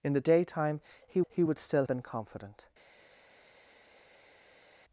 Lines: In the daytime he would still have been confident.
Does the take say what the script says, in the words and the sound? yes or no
no